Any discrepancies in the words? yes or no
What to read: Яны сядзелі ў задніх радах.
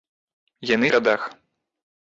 yes